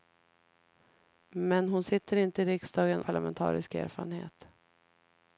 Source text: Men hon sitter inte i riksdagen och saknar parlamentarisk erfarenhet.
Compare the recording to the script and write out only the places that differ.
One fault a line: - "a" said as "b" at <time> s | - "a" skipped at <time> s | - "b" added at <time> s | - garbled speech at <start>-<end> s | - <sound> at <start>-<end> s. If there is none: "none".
- "och saknar" skipped at 3.0 s